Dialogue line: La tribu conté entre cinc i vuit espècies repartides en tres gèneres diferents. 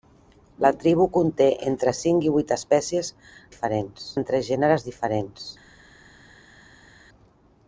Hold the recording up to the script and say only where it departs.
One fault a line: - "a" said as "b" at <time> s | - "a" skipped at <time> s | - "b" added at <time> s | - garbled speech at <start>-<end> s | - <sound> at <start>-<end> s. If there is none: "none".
- "repartides" said as "diferents" at 3.5 s